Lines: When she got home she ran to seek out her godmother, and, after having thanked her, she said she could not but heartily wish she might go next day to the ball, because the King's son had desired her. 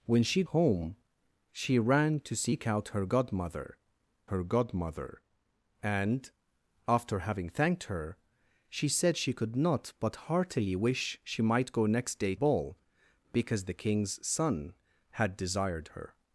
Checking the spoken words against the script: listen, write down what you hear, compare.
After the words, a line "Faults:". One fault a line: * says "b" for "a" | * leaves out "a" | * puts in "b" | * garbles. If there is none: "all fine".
When she home she ran to seek out her godmother her godmother, and, after having thanked her, she said she could not but heartily wish she might go next day ball, because the King's son had desired her.
Faults:
* leaves out "got"
* puts in "her godmother"
* leaves out "to the"